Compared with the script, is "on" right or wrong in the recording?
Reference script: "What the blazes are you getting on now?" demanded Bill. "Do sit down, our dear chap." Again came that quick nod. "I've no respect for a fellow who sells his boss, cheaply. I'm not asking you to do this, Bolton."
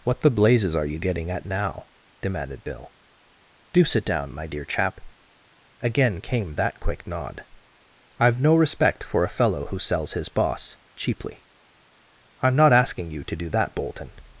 wrong